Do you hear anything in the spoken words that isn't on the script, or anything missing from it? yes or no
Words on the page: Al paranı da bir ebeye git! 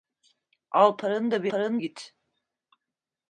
yes